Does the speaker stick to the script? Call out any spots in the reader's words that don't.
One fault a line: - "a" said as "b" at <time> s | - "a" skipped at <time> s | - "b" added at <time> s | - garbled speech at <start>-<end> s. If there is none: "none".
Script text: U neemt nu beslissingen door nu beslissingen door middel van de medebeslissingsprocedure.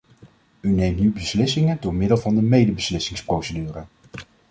- "nu beslissingen door" skipped at 1.9 s